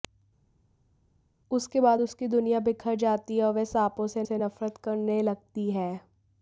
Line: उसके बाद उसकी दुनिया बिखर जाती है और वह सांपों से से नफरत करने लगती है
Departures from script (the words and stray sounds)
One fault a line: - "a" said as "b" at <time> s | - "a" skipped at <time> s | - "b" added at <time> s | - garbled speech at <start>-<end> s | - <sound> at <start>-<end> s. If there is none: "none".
none